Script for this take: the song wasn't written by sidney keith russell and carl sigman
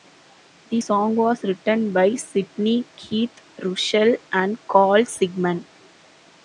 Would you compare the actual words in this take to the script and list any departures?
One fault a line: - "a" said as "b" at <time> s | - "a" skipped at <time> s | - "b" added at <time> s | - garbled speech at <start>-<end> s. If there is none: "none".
- "wasn't" said as "was" at 1.1 s